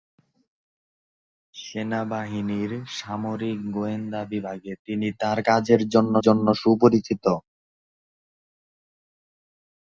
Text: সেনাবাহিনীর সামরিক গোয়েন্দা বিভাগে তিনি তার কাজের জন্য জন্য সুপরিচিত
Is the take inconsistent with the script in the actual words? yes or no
no